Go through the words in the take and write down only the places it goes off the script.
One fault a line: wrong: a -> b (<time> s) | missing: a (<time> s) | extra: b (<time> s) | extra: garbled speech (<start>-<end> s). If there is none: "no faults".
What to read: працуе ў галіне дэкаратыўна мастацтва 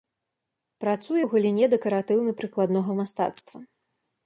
extra: прыкладнога (2.4 s)